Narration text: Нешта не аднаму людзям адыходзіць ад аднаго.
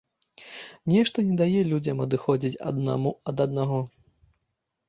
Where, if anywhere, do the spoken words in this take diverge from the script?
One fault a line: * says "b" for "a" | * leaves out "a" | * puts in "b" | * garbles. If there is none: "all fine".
* says "дае" for "аднаму"
* puts in "аднаму"